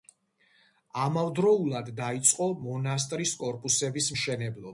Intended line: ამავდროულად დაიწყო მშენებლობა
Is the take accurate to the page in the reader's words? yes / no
no